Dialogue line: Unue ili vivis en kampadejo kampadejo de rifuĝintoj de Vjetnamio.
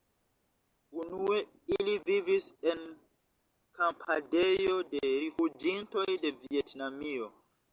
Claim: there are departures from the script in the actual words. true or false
true